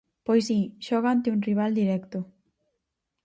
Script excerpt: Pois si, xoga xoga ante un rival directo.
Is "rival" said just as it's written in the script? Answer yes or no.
yes